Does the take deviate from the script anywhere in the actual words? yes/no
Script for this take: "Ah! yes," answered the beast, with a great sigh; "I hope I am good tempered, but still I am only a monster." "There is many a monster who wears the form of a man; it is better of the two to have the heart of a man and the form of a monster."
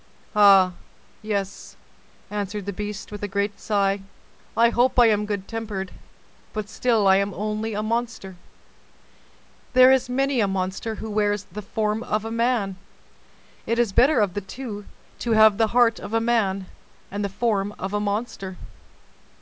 no